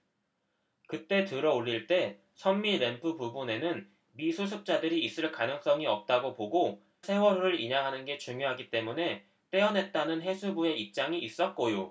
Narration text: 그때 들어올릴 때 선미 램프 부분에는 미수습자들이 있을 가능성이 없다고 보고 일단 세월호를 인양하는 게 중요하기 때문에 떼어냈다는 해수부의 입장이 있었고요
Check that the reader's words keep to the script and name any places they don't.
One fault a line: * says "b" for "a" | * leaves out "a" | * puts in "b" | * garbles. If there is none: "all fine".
* leaves out "일단"